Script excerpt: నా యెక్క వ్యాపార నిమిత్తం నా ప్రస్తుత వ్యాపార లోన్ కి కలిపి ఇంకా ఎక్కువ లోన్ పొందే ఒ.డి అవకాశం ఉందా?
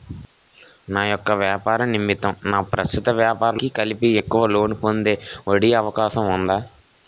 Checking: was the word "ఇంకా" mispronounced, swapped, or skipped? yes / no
yes